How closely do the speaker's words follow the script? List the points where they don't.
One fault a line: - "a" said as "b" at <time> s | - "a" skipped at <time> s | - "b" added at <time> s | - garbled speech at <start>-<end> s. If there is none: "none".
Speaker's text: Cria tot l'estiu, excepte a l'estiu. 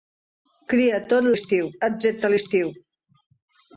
none